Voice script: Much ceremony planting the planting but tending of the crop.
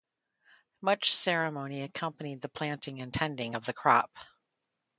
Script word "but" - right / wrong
wrong